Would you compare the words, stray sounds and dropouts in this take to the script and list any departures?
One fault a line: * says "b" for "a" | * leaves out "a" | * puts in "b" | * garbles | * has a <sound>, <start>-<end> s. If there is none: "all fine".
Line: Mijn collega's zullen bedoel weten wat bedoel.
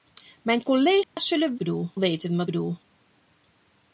* has a dropout, 1.0-1.2 s